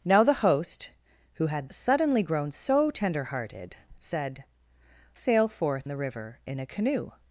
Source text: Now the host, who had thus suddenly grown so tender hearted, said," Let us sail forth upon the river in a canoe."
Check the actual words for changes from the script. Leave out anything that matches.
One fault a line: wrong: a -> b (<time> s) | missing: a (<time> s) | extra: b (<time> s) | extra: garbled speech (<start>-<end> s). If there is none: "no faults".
missing: thus (1.7 s)
missing: Let us (4.4 s)
missing: upon (5.9 s)